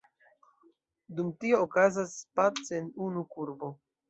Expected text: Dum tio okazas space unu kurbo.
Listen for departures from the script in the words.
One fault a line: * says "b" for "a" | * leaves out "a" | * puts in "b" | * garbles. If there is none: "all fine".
all fine